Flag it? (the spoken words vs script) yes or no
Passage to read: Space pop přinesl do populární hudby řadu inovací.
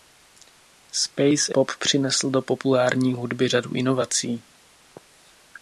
no